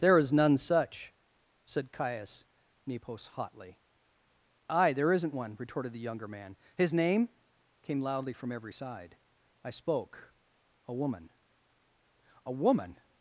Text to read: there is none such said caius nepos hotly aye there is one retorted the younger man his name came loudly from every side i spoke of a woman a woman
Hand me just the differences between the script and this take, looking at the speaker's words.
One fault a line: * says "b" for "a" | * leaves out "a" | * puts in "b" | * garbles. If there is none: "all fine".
* says "isn't" for "is"
* leaves out "of"